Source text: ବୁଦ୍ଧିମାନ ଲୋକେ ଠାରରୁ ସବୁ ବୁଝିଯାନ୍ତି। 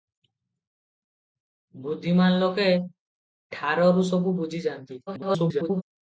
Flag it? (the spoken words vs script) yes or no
yes